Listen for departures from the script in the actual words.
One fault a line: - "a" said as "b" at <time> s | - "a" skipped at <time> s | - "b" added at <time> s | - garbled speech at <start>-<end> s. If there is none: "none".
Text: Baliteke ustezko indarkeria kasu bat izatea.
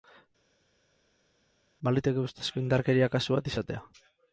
none